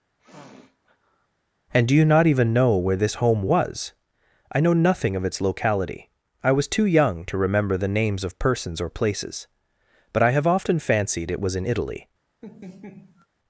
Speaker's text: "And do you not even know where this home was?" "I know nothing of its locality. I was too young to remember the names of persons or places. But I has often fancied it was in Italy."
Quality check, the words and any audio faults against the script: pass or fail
fail